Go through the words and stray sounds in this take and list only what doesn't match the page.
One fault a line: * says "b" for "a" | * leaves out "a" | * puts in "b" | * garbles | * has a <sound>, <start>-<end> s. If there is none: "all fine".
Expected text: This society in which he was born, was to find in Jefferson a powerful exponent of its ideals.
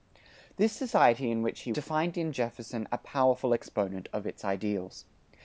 * leaves out "was born was"